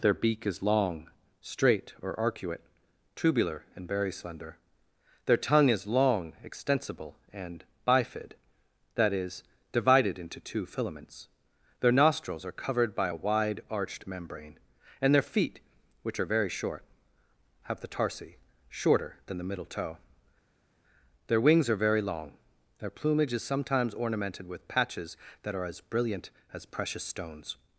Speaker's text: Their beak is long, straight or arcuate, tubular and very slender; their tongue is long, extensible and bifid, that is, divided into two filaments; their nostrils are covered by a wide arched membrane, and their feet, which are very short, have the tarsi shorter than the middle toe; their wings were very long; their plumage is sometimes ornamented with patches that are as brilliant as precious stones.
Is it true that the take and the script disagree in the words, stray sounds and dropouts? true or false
true